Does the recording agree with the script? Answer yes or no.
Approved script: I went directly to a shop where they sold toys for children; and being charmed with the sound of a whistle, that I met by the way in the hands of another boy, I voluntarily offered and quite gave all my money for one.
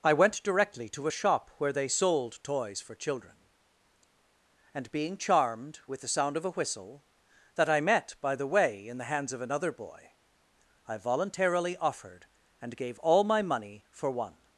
no